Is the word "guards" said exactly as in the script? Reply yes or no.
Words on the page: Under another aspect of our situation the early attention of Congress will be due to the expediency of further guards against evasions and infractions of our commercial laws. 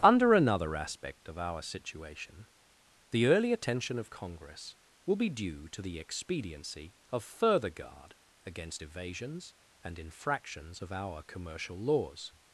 no